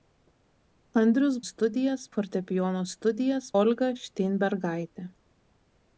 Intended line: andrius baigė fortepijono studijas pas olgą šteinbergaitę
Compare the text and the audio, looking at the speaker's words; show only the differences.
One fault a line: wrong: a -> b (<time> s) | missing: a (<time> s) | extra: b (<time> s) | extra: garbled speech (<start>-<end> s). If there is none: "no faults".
wrong: baigė -> studijas (1.5 s)
missing: pas (3.5 s)